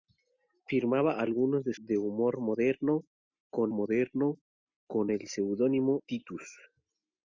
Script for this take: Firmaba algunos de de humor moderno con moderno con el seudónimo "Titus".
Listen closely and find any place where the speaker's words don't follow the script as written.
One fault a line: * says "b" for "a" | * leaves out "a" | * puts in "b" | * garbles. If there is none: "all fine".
all fine